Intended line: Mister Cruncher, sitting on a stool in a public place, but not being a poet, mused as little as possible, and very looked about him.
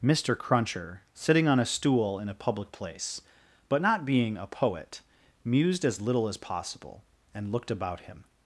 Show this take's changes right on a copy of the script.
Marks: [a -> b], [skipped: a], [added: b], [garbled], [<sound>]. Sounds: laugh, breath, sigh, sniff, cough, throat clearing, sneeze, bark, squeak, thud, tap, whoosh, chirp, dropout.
Mister Cruncher, sitting on a stool in a public place, but not being a poet, mused as little as possible, and [skipped: very] looked about him.